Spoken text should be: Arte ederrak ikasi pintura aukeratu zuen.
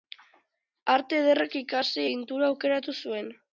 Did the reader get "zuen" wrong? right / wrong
right